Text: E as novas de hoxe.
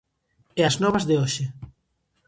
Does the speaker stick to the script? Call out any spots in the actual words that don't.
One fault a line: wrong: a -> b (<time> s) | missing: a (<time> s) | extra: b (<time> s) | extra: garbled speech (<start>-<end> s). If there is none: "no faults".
no faults